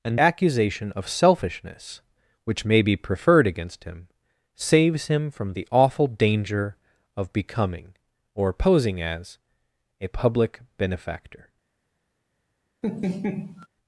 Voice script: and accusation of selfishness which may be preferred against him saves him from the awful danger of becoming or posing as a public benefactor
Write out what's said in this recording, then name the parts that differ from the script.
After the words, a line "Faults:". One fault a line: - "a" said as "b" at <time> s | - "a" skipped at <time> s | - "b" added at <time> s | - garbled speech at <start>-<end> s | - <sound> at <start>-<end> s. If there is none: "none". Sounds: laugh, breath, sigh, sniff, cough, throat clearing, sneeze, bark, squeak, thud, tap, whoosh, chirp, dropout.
and accusation of selfishness which may be preferred against him saves him from the awful danger of becoming or posing as a public benefactor
Faults:
- laugh at 12.8-13.7 s